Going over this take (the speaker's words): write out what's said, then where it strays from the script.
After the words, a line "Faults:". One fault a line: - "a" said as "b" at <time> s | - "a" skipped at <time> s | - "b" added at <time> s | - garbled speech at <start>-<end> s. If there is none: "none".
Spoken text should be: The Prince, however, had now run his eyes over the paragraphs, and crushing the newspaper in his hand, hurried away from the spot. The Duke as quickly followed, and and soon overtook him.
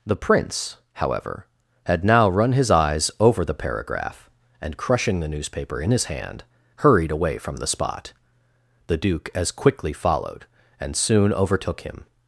The Prince, however, had now run his eyes over the paragraph, and crushing the newspaper in his hand, hurried away from the spot. The Duke as quickly followed, and soon overtook him.
Faults:
- "paragraphs" said as "paragraph" at 3.5 s
- "and" skipped at 10.9 s